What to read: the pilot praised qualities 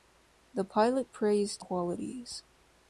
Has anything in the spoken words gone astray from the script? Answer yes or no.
no